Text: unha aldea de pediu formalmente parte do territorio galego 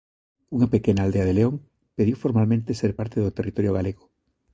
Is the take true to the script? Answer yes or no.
no